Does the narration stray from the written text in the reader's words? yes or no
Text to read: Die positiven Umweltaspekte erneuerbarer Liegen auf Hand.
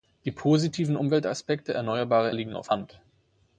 no